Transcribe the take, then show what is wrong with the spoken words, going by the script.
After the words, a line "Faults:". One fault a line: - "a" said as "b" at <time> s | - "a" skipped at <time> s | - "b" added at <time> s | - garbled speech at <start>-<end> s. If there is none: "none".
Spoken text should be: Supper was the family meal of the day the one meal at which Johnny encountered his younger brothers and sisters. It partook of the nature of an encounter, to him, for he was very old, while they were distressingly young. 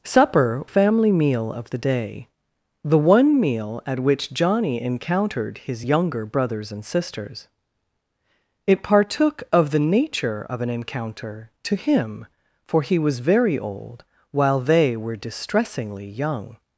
Supper family meal of the day the one meal at which Johnny encountered his younger brothers and sisters. It partook of the nature of an encounter, to him, for he was very old, while they were distressingly young.
Faults:
- "was the" skipped at 0.7 s